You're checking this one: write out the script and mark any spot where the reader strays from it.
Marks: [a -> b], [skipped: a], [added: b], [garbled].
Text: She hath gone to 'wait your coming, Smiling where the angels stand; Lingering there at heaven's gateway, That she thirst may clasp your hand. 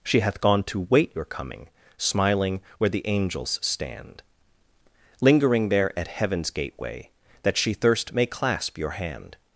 She hath gone to 'wait your coming, Smiling where the angels stand; Lingering there at heaven's gateway, That she thirst may clasp your hand.